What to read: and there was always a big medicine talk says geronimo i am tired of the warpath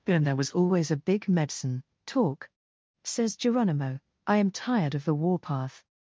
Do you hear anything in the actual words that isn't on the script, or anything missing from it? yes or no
no